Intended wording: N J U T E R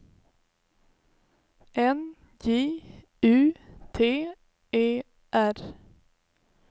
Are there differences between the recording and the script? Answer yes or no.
no